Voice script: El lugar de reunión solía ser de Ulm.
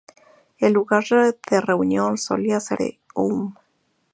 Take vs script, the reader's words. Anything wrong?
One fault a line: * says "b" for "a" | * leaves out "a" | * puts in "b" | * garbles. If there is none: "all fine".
all fine